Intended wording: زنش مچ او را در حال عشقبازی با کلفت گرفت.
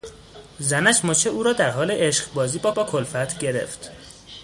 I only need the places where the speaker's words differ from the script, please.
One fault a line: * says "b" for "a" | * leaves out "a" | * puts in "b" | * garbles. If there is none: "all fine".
* puts in "با"